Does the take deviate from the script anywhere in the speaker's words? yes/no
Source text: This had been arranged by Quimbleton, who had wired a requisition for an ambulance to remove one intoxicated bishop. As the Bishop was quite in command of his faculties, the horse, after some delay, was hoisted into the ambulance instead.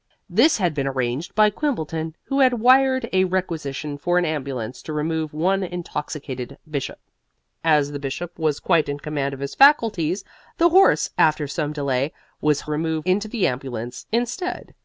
yes